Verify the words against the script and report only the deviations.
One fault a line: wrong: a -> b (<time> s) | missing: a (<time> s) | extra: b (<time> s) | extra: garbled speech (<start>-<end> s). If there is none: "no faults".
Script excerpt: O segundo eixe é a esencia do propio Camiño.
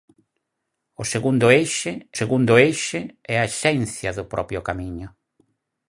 extra: segundo eixe (2.2 s)